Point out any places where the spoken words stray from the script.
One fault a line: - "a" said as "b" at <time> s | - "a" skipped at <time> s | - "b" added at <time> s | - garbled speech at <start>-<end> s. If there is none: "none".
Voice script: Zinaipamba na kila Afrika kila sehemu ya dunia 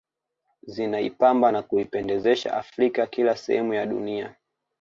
- "kila" said as "kuipendezesha" at 1.6 s